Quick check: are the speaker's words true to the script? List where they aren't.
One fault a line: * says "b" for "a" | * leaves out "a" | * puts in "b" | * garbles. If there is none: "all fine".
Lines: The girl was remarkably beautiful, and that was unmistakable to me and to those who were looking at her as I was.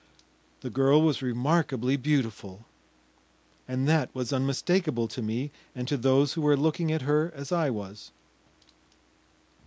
all fine